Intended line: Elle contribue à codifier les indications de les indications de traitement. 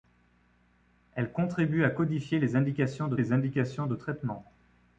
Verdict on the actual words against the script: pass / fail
pass